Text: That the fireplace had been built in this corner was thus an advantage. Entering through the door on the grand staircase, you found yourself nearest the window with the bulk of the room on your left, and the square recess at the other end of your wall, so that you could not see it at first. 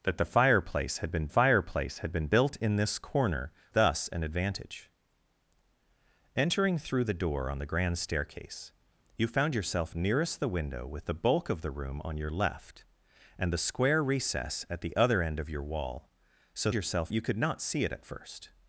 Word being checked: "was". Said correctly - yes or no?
no